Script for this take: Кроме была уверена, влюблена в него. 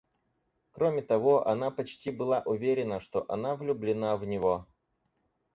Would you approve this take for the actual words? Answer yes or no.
no